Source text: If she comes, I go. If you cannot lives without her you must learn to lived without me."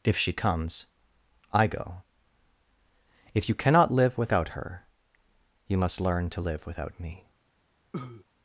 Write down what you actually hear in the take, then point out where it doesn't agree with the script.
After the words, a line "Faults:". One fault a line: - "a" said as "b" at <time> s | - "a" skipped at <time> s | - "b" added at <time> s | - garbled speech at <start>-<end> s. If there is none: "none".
If she comes, I go. If you cannot live without her you must learn to live without me."
Faults:
- "lives" said as "live" at 3.9 s
- "lived" said as "live" at 6.4 s